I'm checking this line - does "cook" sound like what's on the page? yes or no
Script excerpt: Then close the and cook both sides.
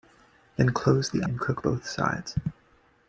yes